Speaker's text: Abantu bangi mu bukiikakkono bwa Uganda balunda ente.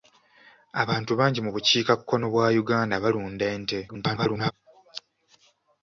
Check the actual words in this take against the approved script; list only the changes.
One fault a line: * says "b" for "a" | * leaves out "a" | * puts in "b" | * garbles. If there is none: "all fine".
* garbles